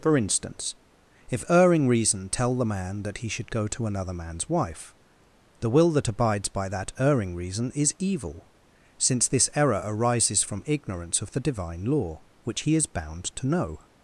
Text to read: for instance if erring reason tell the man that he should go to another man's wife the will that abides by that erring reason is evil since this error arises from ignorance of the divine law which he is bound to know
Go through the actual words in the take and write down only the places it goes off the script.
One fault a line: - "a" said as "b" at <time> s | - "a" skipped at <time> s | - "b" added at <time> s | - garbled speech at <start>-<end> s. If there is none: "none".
none